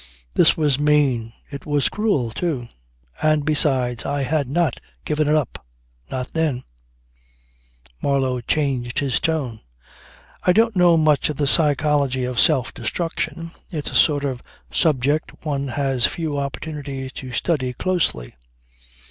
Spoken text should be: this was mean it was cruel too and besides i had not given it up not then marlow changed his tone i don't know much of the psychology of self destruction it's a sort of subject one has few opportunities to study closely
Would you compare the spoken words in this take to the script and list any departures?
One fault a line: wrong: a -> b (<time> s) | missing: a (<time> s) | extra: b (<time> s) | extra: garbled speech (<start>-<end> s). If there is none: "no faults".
no faults